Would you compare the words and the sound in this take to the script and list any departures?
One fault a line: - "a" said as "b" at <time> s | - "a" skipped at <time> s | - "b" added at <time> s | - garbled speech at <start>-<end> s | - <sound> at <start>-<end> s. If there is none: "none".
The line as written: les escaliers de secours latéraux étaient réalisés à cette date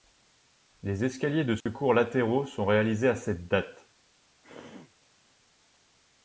- dropout at 1.6-1.7 s
- "étaient" said as "sont" at 2.4 s
- throat clearing at 4.4-4.9 s